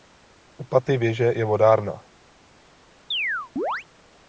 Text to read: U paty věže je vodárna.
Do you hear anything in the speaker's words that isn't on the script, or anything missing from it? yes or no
no